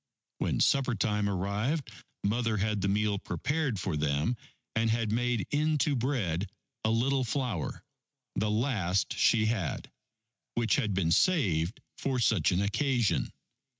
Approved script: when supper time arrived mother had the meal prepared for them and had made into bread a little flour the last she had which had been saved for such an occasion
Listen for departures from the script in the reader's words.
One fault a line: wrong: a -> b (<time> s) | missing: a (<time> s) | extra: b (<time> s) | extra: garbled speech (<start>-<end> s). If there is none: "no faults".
no faults